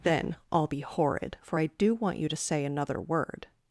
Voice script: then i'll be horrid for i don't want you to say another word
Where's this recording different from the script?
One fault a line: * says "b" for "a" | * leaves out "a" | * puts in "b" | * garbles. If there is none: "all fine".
* says "do" for "don't"